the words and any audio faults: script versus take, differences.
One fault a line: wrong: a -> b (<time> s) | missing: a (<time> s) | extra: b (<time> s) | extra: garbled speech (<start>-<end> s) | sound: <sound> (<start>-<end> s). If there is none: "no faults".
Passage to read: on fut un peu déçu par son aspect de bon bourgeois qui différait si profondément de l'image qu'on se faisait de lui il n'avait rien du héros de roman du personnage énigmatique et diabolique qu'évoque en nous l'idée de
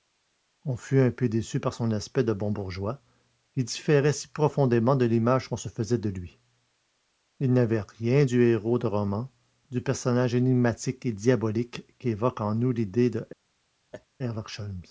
sound: laugh (13.9-14.1 s)